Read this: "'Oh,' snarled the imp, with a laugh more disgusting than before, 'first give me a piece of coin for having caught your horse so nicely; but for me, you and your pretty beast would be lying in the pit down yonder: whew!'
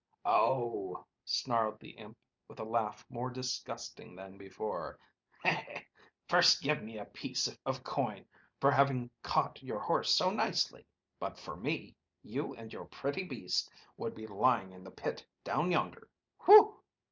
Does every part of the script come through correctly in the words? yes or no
yes